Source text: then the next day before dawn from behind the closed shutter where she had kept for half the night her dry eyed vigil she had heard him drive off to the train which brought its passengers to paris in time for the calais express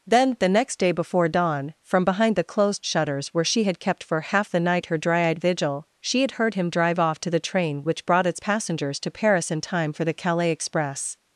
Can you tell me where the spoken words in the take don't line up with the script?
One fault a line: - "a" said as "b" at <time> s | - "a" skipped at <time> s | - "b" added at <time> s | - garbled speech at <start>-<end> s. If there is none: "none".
- "shutter" said as "shutters" at 2.8 s